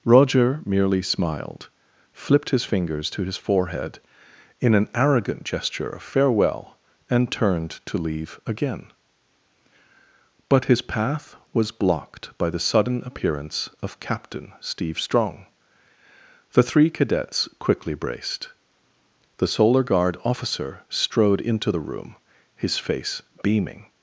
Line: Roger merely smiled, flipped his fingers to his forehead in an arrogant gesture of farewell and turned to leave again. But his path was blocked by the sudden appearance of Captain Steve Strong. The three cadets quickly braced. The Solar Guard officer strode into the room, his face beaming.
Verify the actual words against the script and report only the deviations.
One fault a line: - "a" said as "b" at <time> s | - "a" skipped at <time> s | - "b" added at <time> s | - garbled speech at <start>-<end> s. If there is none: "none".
none